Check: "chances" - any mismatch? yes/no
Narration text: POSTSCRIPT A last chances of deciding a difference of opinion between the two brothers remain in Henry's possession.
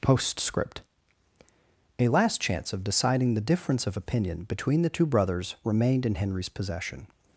yes